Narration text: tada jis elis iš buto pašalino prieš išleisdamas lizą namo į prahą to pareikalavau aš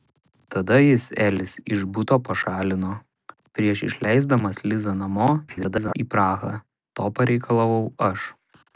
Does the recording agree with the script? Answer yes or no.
no